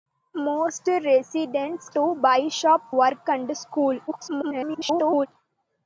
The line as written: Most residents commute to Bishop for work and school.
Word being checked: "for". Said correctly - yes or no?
no